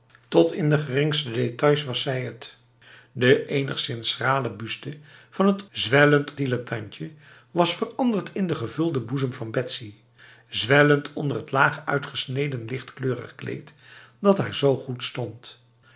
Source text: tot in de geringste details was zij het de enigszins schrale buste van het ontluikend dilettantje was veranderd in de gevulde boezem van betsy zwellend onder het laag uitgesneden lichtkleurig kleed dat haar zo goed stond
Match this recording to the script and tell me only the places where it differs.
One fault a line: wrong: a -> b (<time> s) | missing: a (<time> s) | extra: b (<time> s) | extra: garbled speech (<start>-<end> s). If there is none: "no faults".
wrong: ontluikend -> zwellend (5.7 s)